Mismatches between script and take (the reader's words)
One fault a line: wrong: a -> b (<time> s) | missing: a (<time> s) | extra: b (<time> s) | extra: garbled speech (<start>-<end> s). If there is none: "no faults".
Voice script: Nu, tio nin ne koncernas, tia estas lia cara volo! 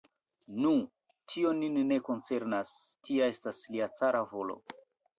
no faults